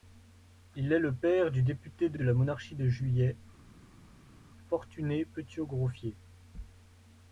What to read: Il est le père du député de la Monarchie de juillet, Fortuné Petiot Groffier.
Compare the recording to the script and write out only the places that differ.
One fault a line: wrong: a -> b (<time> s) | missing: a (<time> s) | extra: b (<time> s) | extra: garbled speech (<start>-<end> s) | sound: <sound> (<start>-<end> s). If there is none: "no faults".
extra: de (2.1 s)